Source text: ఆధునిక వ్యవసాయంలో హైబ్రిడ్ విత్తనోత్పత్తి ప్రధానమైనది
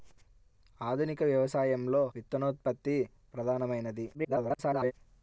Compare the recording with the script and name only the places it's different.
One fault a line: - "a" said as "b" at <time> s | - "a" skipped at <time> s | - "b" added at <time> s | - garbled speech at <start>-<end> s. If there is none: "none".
- "హైబ్రిడ్" skipped at 2.0 s
- garbled speech at 4.1-4.9 s